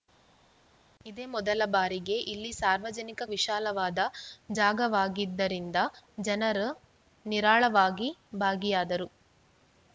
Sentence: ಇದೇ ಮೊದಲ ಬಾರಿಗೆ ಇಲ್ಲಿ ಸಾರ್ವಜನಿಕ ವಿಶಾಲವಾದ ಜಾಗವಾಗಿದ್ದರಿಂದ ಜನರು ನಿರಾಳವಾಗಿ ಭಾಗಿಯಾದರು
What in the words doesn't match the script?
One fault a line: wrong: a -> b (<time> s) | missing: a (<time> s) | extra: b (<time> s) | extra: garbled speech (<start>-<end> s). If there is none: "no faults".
no faults